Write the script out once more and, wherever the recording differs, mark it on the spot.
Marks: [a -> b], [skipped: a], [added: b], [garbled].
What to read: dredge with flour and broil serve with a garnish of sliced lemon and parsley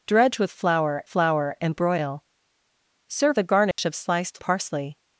dredge with flour [added: flour] and broil serve [skipped: with] a garnish of sliced [skipped: lemon and] parsley